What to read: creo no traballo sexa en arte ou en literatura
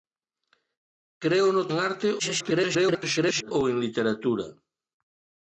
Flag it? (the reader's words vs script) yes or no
yes